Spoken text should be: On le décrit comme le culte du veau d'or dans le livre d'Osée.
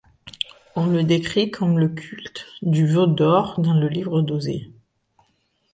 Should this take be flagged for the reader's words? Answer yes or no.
no